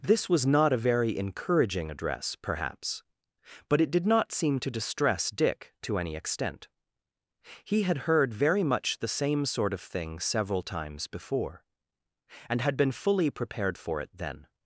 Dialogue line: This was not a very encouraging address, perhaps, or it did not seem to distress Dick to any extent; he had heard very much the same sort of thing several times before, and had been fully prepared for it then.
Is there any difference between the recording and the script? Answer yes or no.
yes